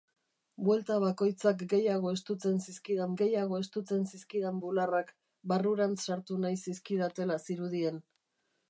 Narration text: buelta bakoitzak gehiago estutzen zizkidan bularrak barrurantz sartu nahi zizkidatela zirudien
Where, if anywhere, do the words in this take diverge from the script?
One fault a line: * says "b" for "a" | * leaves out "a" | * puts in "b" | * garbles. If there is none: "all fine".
* puts in "gehiago estutzen zizkidan"